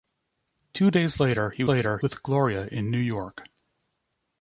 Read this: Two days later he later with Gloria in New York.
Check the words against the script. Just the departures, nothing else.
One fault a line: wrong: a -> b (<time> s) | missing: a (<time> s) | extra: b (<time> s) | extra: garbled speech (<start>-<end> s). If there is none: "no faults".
no faults